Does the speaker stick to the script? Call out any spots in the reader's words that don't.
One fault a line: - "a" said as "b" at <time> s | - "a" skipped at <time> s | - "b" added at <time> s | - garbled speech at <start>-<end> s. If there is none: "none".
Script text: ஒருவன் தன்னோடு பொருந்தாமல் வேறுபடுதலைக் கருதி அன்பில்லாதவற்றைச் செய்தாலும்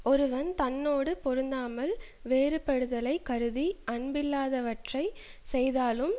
none